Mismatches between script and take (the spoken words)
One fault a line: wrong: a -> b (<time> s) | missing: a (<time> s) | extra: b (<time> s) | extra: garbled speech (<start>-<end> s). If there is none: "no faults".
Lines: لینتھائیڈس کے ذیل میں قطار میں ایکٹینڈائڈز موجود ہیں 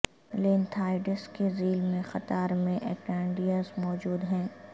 no faults